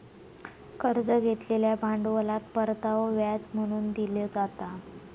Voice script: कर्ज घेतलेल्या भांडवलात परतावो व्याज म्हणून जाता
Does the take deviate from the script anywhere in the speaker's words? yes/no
yes